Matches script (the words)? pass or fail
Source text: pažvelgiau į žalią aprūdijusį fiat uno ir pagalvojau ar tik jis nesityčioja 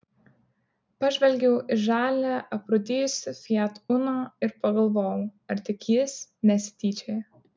pass